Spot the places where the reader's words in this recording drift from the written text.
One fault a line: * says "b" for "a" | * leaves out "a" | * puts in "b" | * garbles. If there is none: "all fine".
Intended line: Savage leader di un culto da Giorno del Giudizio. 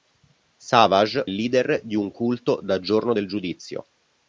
all fine